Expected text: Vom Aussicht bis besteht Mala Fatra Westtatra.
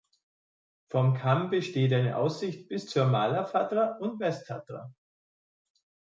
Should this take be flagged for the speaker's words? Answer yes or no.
yes